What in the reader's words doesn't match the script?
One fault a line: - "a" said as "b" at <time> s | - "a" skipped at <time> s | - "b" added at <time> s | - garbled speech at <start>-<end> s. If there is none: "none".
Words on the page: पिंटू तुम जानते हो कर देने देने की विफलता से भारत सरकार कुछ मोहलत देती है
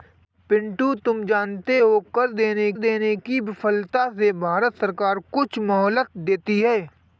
none